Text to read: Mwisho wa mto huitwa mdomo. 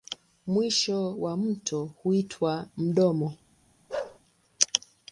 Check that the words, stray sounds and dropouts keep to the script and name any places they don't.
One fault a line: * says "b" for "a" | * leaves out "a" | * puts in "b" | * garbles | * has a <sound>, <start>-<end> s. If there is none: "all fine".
* has a bark, 3.9-4.2 s